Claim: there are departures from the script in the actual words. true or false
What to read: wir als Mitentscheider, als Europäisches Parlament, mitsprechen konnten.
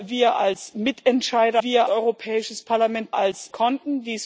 true